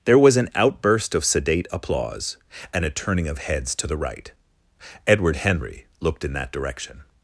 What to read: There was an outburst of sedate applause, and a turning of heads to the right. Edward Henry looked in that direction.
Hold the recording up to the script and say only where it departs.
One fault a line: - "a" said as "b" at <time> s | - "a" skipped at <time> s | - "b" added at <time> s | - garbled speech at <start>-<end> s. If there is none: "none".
none